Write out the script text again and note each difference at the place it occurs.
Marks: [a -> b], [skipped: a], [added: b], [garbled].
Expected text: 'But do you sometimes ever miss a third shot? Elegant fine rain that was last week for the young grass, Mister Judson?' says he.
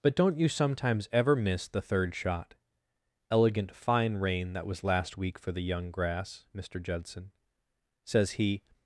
'But [do -> don't] you sometimes ever miss [a -> the] third shot? Elegant fine rain that was last week for the young grass, Mister Judson?' says he.